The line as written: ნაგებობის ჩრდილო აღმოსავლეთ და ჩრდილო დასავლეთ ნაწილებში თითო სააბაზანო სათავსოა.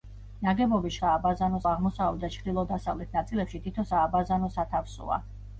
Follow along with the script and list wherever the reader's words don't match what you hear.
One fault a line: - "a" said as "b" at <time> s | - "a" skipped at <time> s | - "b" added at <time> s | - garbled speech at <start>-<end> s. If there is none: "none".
- "ჩრდილო" said as "სააბაზანო" at 1.0 s